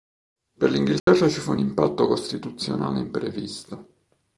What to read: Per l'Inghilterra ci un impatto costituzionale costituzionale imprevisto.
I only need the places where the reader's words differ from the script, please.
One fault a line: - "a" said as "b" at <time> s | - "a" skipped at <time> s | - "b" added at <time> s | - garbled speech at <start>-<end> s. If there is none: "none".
- "fu" added at 1.4 s
- "costituzionale" skipped at 3.0 s